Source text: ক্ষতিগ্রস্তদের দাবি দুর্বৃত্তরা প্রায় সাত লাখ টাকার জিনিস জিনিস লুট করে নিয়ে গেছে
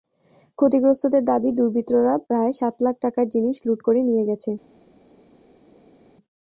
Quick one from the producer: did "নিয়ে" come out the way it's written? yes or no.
yes